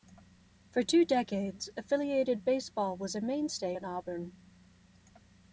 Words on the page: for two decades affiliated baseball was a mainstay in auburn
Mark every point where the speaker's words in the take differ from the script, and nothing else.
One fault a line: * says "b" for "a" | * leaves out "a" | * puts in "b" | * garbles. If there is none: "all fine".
all fine